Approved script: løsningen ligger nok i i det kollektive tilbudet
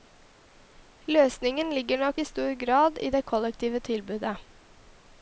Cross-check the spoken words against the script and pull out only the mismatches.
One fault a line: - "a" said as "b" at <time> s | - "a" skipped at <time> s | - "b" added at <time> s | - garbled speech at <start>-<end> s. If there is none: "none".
- "stor grad" added at 2.3 s